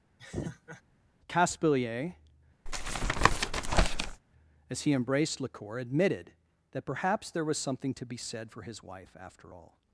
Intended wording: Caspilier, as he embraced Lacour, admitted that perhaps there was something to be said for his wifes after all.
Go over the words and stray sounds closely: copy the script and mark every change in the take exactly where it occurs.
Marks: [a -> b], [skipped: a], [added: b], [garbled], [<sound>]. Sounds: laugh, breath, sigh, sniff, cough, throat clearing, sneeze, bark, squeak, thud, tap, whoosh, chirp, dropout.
[laugh] Caspilier, [tap] as he embraced Lacour, admitted that perhaps there was something to be said for his [wifes -> wife] after all.